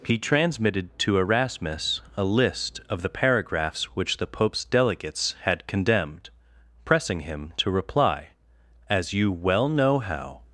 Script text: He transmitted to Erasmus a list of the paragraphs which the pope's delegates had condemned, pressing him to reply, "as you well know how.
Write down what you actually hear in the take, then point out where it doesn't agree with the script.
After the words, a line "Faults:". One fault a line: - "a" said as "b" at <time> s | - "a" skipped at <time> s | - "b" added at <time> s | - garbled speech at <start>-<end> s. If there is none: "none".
He transmitted to Erasmus a list of the paragraphs which the pope's delegates had condemned, pressing him to reply, "as you well know how.
Faults:
none